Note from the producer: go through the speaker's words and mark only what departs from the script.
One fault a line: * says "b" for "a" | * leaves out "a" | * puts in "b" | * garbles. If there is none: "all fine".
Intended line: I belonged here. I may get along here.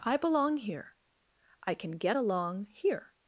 * says "belong" for "belonged"
* says "can" for "may"